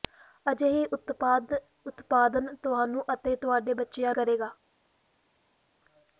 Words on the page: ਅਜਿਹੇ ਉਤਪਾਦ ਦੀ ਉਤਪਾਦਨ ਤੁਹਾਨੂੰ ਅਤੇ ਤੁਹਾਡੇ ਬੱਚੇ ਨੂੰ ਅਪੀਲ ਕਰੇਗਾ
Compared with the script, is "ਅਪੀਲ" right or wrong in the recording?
wrong